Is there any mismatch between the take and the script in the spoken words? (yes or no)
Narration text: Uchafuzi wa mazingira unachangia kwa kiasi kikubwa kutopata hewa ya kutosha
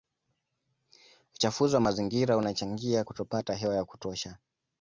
yes